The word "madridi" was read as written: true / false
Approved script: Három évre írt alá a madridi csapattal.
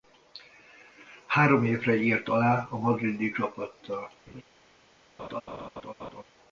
true